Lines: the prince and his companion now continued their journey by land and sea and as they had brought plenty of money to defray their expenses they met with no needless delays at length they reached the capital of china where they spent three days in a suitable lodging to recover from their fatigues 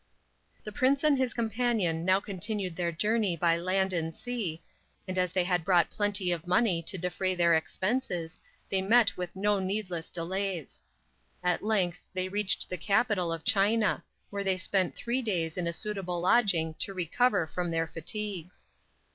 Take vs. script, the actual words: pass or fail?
pass